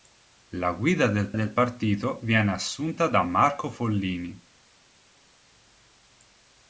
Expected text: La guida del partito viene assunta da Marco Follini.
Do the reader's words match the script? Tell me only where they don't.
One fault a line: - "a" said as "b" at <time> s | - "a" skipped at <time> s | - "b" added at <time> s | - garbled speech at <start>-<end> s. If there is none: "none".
- "del" added at 1.3 s